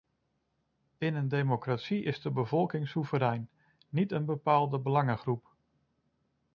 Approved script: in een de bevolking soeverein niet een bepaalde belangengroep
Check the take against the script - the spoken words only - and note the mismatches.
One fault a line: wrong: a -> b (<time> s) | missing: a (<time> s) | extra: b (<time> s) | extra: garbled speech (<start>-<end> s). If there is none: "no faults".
extra: democratie is (1.3 s)